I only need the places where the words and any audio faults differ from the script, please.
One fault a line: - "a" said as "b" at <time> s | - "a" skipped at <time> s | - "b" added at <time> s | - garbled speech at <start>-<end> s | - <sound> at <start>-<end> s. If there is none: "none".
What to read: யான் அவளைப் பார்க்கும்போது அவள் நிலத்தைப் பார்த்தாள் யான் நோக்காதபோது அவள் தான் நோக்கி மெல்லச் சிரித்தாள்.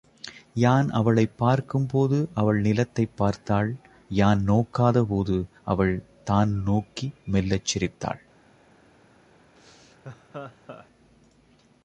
- laugh at 9.6-10.9 s